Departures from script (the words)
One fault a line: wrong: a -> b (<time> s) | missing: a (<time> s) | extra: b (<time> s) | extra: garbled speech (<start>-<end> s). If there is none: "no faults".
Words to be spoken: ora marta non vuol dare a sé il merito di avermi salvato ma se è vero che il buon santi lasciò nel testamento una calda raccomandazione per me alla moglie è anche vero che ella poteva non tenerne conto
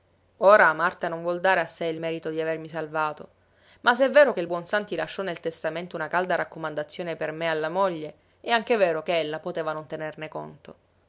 no faults